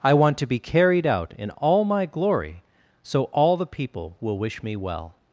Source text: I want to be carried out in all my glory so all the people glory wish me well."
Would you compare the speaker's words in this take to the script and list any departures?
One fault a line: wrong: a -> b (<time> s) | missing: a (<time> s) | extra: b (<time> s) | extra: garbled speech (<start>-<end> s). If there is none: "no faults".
wrong: glory -> will (4.2 s)